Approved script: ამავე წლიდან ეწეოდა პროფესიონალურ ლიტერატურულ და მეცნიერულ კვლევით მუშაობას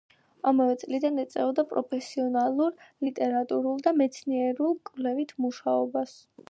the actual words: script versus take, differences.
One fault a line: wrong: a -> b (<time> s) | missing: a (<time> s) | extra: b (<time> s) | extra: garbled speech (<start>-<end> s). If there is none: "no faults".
no faults